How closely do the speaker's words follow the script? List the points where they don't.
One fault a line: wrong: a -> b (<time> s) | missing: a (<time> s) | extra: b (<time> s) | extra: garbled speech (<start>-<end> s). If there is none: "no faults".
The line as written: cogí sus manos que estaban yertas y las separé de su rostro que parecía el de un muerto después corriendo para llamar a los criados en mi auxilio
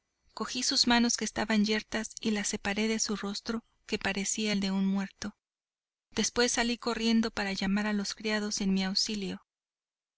extra: salí (6.5 s)